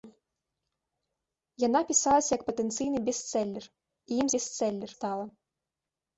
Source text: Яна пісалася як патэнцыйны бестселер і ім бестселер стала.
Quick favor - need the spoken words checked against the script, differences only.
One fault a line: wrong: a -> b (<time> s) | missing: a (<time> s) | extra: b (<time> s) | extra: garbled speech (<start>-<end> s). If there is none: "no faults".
no faults